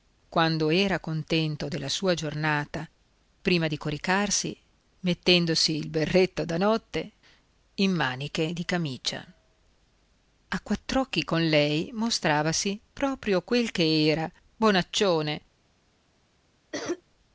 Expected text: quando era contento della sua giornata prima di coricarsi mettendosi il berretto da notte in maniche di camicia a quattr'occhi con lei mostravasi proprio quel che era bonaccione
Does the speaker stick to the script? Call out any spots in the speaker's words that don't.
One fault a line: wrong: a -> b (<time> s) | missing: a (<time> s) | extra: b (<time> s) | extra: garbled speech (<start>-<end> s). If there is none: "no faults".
no faults